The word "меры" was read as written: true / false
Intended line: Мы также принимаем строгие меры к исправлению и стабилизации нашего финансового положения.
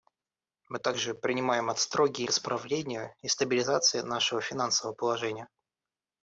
false